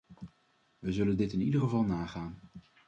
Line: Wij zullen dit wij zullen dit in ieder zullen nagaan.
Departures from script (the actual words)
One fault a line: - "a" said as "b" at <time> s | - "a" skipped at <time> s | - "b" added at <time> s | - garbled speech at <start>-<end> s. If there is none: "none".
- "wij zullen dit" skipped at 1.3 s
- "zullen" said as "geval" at 1.6 s